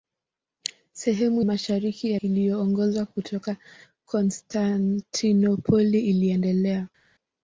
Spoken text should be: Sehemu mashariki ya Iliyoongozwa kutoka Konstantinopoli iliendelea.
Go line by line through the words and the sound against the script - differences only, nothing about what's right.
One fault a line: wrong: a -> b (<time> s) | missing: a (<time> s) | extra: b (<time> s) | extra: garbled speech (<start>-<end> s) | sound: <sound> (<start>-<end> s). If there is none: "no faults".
no faults